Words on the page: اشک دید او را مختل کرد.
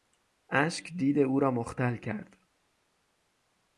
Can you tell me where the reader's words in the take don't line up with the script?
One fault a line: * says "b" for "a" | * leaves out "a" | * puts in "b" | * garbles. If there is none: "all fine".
all fine